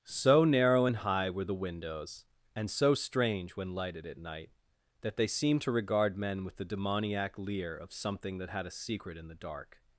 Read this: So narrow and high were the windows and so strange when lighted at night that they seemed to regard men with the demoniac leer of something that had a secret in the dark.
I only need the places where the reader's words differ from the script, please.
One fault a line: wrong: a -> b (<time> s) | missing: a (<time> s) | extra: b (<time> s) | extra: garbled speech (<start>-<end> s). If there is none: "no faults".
no faults